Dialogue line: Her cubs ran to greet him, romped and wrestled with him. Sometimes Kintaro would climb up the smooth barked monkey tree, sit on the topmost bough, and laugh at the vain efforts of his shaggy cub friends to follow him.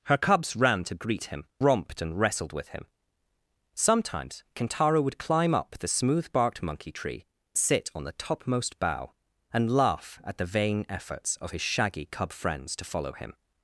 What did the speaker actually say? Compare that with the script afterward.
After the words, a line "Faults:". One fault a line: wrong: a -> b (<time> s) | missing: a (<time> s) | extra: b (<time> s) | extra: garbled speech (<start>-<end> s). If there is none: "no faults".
Her cubs ran to greet him, romped and wrestled with him. Sometimes Kintaro would climb up the smooth barked monkey tree, sit on the topmost bough, and laugh at the vain efforts of his shaggy cub friends to follow him.
Faults:
no faults